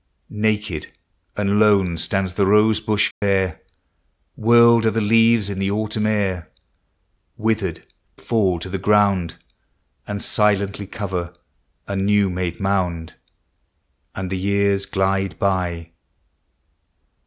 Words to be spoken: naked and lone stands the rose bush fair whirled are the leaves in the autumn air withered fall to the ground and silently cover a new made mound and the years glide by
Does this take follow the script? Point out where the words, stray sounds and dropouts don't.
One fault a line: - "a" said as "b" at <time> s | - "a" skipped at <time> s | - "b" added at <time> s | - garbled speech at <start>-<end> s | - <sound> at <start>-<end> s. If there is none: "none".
- dropout at 3.1-3.2 s